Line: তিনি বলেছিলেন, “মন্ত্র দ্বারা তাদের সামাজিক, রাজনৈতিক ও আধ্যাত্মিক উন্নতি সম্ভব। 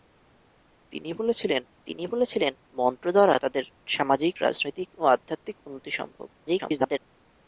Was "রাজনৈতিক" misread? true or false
false